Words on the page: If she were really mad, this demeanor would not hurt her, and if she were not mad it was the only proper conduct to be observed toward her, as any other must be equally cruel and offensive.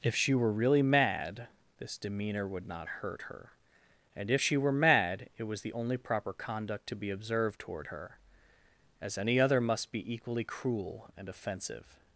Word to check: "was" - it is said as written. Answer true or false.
true